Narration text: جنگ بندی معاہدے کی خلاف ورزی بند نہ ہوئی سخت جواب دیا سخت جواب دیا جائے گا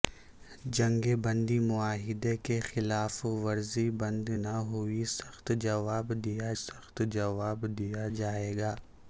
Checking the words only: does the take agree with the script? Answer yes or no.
yes